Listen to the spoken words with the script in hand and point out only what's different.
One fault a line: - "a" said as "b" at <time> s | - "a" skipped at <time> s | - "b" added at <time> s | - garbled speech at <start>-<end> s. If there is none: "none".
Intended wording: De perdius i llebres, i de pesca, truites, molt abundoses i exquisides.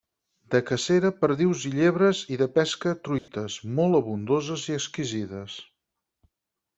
- "cacera" added at 0.7 s